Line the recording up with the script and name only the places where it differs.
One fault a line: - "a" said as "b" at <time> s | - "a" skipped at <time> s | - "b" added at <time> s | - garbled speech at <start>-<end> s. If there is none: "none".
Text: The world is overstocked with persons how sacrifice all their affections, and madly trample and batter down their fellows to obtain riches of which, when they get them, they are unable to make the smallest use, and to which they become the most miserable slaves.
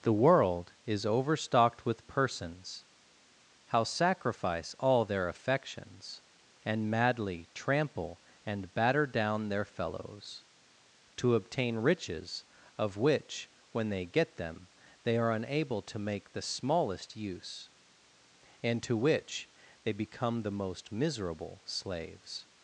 none